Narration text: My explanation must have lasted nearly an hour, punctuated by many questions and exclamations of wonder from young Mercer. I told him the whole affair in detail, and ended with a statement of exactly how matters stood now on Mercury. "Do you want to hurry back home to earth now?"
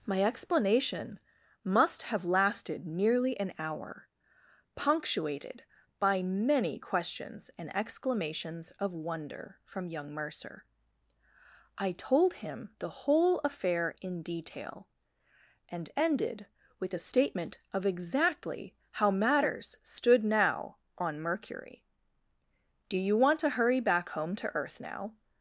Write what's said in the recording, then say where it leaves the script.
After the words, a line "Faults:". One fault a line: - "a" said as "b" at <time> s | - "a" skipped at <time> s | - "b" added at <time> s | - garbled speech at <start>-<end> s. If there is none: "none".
My explanation must have lasted nearly an hour, punctuated by many questions and exclamations of wonder from young Mercer. I told him the whole affair in detail, and ended with a statement of exactly how matters stood now on Mercury. "Do you want to hurry back home to earth now?"
Faults:
none